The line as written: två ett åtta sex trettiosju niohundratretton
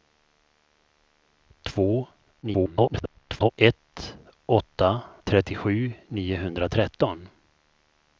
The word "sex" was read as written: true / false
false